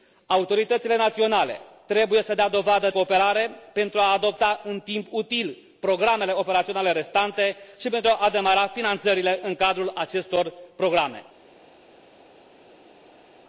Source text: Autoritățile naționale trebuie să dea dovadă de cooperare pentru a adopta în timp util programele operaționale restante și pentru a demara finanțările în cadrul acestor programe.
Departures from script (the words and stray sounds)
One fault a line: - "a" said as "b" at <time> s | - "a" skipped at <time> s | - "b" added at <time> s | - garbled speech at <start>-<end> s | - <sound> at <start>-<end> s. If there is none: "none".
- "de" skipped at 2.9 s